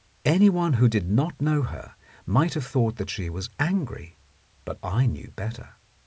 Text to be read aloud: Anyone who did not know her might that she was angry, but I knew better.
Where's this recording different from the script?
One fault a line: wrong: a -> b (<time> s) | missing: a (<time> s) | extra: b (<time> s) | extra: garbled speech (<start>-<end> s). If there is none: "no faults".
extra: have thought (2.5 s)